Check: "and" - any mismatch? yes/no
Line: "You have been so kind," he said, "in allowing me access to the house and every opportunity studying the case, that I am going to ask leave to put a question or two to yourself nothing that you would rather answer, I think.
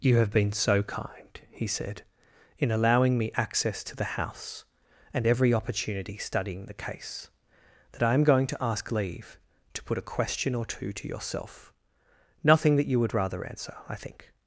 no